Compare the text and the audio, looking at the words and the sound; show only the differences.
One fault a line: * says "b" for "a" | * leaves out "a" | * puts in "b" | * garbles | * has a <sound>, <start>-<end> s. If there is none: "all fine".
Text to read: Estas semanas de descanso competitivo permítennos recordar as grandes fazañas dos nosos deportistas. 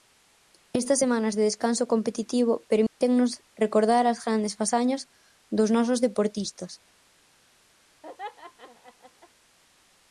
* has a dropout, 2.9-3.0 s
* has a laugh, 8.0-9.3 s